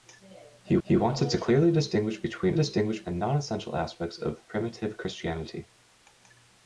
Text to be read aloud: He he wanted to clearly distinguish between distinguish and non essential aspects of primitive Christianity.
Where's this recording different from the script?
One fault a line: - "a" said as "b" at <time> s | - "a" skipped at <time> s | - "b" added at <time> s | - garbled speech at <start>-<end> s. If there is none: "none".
none